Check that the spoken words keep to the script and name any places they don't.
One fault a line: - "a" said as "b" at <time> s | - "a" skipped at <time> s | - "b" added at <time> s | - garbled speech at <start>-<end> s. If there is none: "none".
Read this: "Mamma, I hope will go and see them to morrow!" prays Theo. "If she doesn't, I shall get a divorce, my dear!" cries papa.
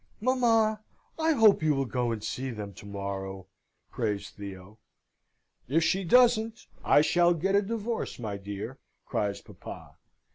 - "you" added at 1.6 s